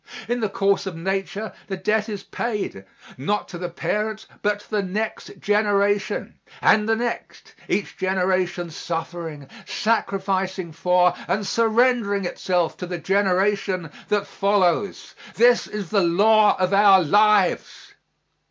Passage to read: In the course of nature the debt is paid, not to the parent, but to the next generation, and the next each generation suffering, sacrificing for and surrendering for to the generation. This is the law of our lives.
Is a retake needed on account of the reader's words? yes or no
yes